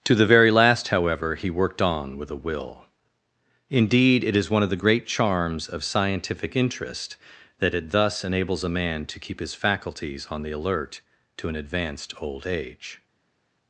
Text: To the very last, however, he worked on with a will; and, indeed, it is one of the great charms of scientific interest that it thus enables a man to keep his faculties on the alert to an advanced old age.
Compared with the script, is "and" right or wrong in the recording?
wrong